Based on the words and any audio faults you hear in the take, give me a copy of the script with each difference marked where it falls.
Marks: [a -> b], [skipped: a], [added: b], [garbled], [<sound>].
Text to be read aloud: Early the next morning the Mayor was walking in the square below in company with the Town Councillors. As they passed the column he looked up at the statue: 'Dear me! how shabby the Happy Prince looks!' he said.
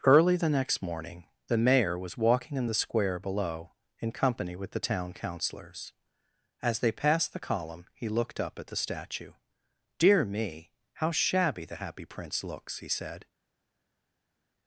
Early the next morning the Mayor was walking in the square below in company with the Town Councillors. As they passed the column he looked up at the statue: 'Dear me! how shabby the Happy Prince looks!' he said.